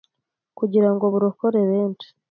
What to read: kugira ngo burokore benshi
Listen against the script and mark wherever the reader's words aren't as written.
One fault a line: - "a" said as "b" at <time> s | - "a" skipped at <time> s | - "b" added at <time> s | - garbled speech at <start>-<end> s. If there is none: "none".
none